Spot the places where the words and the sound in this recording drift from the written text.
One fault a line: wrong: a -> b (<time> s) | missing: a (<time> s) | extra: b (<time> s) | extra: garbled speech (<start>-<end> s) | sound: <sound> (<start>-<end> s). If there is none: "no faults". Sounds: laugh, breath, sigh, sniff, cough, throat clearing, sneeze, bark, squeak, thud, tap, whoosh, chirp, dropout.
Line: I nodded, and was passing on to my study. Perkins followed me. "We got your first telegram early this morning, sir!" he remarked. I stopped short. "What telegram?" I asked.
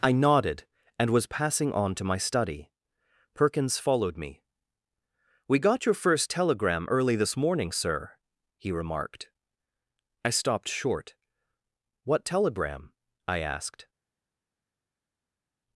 no faults